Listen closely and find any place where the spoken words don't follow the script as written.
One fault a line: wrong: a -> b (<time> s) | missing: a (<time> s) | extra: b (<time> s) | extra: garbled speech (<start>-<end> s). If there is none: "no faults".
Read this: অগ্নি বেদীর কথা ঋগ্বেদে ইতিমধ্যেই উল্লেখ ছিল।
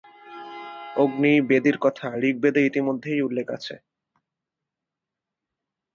wrong: ছিল -> আছে (3.5 s)